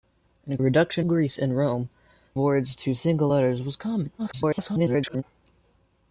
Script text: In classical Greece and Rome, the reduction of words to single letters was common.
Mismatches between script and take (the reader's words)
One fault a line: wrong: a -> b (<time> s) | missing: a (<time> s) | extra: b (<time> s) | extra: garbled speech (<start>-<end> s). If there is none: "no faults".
wrong: classical -> reduction (0.6 s)
missing: the reduction of (1.9 s)
extra: garbled speech (4.2-5.2 s)